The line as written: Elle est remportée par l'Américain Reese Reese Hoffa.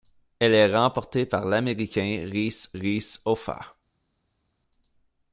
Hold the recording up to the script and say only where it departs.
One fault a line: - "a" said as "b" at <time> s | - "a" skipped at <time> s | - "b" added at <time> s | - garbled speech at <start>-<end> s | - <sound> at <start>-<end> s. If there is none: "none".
none